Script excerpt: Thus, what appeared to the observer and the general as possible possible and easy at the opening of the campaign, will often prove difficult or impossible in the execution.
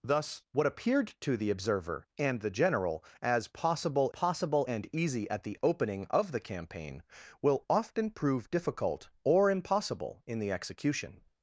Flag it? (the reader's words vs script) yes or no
no